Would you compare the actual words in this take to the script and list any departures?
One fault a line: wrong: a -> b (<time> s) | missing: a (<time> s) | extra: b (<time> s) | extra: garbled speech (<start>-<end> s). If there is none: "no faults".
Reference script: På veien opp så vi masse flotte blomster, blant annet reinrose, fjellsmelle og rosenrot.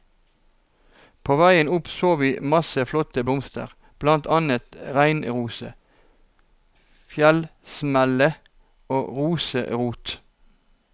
no faults